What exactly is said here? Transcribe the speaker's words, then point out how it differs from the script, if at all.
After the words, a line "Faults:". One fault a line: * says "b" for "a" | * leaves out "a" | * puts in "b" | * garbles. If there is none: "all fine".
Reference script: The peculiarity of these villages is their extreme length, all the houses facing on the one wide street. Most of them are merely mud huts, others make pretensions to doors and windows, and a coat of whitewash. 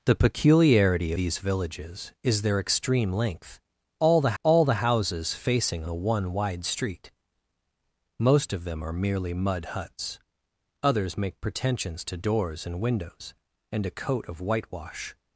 The peculiarity these villages is their extreme length, all the all the houses facing the one wide street. Most of them are merely mud huts, others make pretensions to doors and windows, and a coat of whitewash.
Faults:
* leaves out "of"
* puts in "all the"
* leaves out "on"